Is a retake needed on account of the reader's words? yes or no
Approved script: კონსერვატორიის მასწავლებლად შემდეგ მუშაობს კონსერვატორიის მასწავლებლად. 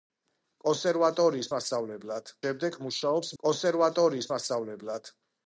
no